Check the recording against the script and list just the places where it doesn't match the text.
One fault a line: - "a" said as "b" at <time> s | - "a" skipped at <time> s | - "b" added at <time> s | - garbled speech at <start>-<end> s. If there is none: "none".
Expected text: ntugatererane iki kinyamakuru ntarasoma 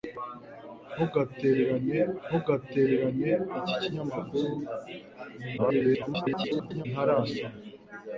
- "ntugatererane" added at 2.3 s
- garbled speech at 5.6-6.9 s